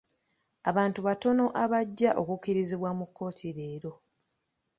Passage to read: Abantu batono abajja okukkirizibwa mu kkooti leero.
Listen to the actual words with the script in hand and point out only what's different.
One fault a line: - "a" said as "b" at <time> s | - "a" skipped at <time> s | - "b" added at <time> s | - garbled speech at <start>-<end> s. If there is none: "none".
none